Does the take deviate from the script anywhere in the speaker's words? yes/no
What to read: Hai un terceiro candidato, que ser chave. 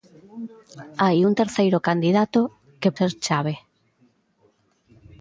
no